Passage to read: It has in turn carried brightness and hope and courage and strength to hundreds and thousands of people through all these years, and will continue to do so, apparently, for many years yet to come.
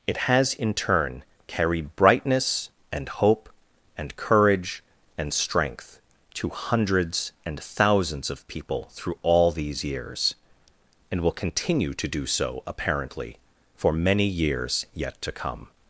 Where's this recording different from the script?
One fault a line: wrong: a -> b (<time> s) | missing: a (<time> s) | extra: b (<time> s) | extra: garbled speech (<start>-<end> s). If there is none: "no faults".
no faults